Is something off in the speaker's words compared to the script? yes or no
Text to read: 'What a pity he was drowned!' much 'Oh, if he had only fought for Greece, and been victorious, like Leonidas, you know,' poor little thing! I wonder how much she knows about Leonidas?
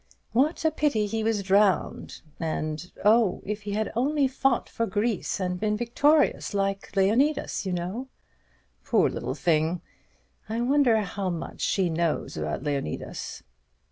yes